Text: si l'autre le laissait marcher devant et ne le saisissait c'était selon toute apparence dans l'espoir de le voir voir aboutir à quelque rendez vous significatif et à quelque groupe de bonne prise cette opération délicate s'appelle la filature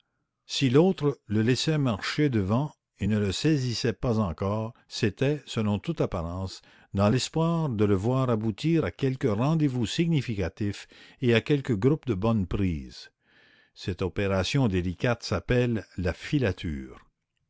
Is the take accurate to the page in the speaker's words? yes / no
no